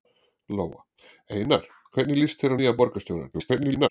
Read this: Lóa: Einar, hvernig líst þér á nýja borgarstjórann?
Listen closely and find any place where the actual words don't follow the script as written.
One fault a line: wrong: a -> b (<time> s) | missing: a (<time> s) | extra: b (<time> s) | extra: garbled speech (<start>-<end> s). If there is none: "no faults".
extra: garbled speech (3.3-3.9 s)